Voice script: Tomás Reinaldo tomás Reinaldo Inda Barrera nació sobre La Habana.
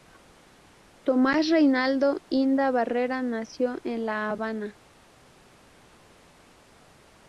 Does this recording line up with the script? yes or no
no